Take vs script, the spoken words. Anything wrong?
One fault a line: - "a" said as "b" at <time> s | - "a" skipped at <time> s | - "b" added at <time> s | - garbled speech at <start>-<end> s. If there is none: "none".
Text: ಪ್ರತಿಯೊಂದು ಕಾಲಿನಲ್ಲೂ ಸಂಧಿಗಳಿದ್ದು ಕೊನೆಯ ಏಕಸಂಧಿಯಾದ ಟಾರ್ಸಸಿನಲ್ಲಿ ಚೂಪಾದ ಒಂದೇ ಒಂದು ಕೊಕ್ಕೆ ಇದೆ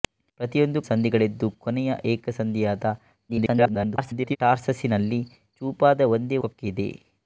- "ಕಾಲಿನಲ್ಲೂ" skipped at 0.8 s
- garbled speech at 3.3-4.4 s
- "ಒಂದು" skipped at 6.4 s